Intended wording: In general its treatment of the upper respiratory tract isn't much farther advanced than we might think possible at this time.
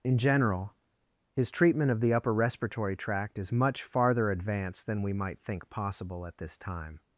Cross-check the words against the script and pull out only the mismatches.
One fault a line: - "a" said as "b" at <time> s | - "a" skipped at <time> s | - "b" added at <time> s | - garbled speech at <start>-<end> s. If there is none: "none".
- "its" said as "his" at 1.4 s
- "isn't" said as "is" at 3.4 s